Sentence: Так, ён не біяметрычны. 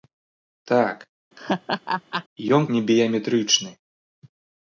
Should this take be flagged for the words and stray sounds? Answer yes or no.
yes